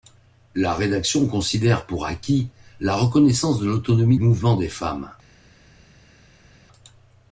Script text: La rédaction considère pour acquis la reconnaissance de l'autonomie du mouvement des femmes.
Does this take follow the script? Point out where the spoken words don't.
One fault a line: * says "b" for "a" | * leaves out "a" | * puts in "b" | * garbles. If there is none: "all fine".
* leaves out "du"